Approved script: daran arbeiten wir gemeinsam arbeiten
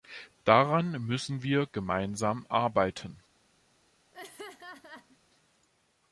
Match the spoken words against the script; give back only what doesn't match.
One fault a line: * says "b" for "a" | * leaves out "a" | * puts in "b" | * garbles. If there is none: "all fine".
* says "müssen" for "arbeiten"